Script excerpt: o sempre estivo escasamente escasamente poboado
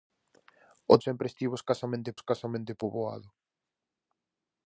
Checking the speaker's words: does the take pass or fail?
pass